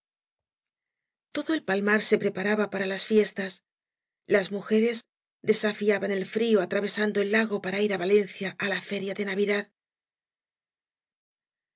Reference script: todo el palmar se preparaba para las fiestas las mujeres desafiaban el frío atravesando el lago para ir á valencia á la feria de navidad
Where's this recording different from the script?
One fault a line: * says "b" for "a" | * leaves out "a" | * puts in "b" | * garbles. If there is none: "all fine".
all fine